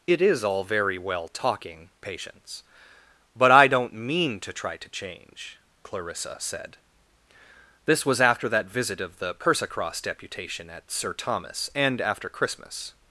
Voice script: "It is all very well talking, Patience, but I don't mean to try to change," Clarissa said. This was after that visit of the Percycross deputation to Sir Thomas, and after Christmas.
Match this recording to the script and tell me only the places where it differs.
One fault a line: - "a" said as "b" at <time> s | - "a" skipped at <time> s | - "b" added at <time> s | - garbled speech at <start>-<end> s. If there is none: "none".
- "to" said as "at" at 10.7 s